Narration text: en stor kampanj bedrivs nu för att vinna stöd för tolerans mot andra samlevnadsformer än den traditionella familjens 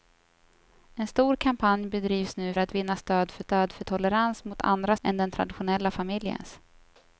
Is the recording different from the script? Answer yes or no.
yes